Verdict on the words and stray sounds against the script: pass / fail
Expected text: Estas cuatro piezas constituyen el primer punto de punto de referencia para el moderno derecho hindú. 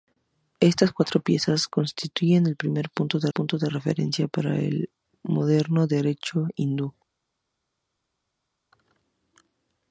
pass